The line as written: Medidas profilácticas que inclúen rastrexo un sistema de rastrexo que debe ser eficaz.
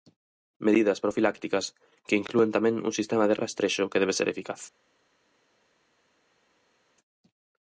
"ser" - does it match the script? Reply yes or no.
yes